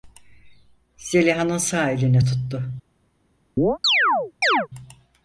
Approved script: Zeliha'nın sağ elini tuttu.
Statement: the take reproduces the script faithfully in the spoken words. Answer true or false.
true